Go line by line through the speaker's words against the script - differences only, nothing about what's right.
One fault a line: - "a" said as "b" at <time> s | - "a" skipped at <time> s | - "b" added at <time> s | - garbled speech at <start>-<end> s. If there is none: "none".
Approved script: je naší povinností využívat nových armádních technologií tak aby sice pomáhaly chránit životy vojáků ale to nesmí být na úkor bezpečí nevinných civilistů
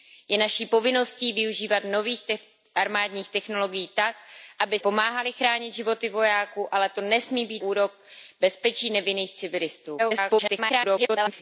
- "sice" skipped at 4.8 s
- "na" skipped at 7.6 s
- garbled speech at 10.0-11.4 s